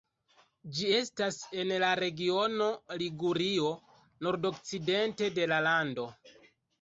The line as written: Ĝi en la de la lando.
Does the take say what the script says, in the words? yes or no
no